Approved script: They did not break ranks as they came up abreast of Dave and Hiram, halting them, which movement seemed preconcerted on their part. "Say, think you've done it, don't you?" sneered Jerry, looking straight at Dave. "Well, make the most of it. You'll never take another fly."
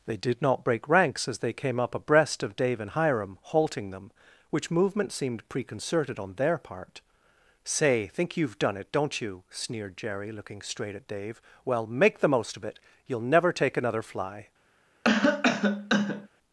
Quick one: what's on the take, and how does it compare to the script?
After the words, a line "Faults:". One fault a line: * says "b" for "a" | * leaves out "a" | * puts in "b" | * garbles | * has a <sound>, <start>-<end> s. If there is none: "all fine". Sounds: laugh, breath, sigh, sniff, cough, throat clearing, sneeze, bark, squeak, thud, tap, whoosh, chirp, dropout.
They did not break ranks as they came up abreast of Dave and Hiram, halting them, which movement seemed preconcerted on their part. "Say, think you've done it, don't you?" sneered Jerry, looking straight at Dave. "Well, make the most of it. You'll never take another fly."
Faults:
* has a cough, 15.0-16.3 s